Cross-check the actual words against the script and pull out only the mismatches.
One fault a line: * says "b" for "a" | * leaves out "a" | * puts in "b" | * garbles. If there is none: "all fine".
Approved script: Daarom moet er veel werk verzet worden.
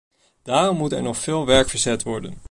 * puts in "nog"